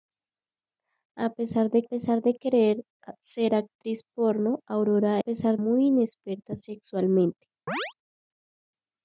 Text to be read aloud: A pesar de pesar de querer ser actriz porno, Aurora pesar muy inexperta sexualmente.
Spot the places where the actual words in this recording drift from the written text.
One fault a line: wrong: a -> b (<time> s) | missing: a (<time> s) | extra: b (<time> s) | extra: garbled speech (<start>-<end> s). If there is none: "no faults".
no faults